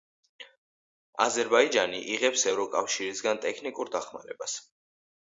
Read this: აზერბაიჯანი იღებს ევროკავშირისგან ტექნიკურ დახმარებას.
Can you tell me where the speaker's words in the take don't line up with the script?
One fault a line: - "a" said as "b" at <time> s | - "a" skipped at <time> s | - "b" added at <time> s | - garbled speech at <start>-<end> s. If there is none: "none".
none